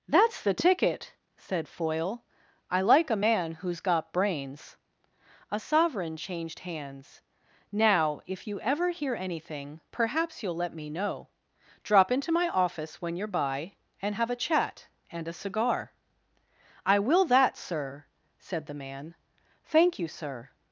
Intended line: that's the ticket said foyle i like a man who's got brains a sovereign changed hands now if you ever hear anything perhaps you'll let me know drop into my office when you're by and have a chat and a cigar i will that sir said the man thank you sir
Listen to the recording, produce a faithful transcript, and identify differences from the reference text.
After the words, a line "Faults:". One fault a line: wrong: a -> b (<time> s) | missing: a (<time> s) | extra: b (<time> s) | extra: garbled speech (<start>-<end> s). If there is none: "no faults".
that's the ticket said foyle i like a man who's got brains a sovereign changed hands now if you ever hear anything perhaps you'll let me know drop into my office when you're by and have a chat and a cigar i will that sir said the man thank you sir
Faults:
no faults